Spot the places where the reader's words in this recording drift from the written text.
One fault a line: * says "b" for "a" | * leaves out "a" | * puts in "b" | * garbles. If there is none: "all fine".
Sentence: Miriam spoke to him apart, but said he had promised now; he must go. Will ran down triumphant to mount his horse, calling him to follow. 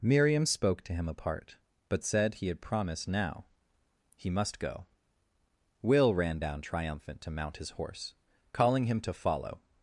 all fine